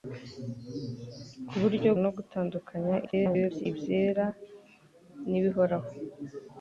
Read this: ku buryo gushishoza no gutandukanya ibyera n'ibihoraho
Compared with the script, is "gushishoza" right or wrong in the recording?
wrong